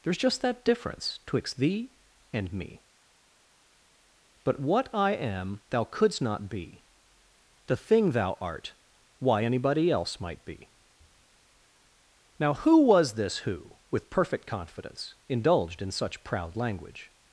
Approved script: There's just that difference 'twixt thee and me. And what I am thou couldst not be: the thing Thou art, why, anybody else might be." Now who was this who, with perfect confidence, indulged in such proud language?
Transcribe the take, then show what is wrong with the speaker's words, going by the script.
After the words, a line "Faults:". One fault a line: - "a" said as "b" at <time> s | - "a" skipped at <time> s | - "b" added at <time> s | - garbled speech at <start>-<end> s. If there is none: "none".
There's just that difference 'twixt thee and me. But what I am thou couldst not be: the thing Thou art, why, anybody else might be." Now who was this who, with perfect confidence, indulged in such proud language?
Faults:
- "And" said as "But" at 4.4 s